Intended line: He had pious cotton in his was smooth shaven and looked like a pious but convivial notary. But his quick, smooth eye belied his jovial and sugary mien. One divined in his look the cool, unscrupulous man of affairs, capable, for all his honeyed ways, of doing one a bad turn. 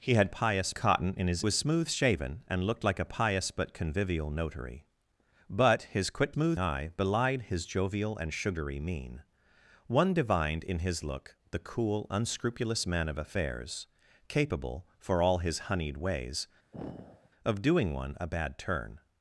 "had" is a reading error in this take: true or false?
false